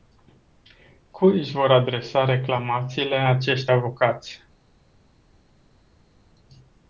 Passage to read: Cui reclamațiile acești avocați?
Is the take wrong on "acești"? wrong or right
right